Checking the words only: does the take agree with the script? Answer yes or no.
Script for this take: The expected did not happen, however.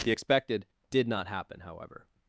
yes